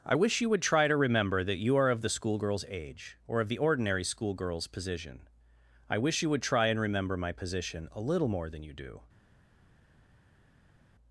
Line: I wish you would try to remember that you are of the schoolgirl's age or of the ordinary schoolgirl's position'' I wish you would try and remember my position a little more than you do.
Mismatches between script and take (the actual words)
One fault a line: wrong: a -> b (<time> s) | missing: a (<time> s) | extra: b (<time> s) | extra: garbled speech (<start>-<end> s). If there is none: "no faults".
no faults